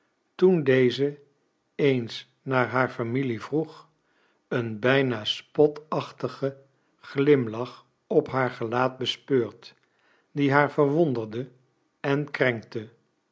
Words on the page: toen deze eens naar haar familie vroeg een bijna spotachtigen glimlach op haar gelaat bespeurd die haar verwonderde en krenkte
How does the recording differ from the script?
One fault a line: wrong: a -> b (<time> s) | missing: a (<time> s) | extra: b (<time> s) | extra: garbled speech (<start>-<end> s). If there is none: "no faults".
no faults